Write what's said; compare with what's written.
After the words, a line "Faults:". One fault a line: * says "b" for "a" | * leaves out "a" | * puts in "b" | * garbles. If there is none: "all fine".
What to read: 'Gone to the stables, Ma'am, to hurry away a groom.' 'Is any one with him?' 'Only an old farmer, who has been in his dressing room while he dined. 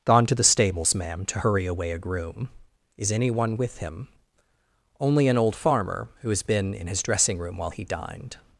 'Gone to the stables, Ma'am, to hurry away a groom.' 'Is any one with him?' 'Only an old farmer, who has been in his dressing room while he dined.
Faults:
all fine